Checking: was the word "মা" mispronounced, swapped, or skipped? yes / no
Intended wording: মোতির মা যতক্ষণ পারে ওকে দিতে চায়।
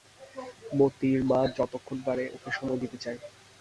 no